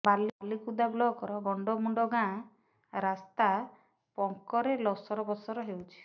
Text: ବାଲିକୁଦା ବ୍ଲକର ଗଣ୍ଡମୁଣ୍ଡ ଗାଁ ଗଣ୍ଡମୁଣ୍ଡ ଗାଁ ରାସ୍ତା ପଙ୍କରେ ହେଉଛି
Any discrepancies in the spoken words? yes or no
yes